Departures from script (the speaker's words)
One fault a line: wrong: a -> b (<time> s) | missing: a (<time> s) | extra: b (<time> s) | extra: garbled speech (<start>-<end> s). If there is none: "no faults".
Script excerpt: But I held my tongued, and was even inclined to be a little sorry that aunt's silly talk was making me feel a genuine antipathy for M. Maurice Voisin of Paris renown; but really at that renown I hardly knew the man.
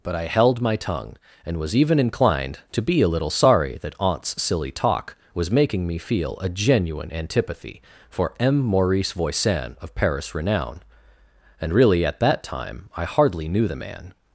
wrong: tongued -> tongue (0.8 s)
wrong: but -> and (11.6 s)
wrong: renown -> time (12.4 s)